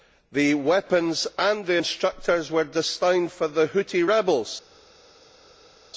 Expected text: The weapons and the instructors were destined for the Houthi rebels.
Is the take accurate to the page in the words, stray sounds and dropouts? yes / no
yes